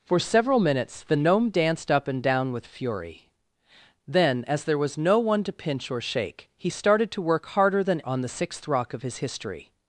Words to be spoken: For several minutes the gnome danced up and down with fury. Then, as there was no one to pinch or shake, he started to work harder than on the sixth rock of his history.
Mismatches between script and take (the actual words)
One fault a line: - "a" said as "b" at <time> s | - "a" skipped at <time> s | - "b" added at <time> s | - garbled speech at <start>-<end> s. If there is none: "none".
none